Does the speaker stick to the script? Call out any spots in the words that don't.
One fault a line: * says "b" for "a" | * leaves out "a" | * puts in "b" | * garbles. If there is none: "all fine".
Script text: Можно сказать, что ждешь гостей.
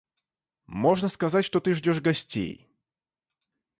* puts in "ты"